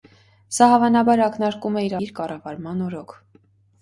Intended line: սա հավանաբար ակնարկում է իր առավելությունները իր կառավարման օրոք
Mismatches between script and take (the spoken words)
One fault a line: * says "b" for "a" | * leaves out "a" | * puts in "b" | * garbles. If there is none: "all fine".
* leaves out "առավելությունները"